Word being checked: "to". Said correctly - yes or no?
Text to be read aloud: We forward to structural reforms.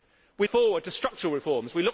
yes